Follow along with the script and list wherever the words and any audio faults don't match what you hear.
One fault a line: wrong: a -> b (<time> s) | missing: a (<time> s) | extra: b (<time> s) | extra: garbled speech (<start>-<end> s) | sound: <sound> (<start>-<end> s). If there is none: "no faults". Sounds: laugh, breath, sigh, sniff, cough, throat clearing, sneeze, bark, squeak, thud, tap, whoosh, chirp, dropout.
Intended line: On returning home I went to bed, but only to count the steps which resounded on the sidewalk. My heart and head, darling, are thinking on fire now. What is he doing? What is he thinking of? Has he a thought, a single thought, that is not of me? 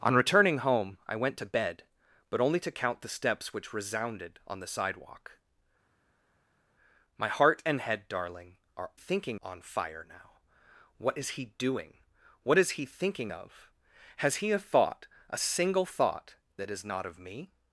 no faults